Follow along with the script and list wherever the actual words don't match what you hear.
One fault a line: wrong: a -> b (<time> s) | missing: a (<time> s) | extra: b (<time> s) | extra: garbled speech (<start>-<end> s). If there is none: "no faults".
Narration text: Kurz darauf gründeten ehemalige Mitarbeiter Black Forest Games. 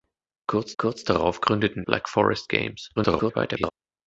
extra: kurz (0.8 s)
missing: ehemalige Mitarbeiter (1.9 s)
extra: garbled speech (3.0-3.7 s)